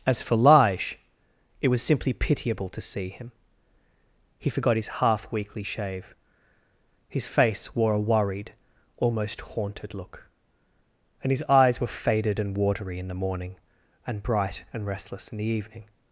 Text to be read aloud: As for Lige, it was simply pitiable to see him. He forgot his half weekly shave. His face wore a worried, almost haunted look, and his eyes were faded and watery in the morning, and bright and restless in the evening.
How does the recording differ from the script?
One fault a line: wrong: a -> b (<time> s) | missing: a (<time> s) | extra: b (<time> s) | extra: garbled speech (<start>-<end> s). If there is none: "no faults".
no faults